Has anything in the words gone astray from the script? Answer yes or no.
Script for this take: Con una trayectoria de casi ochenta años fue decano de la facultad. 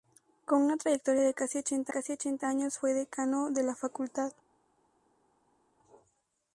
yes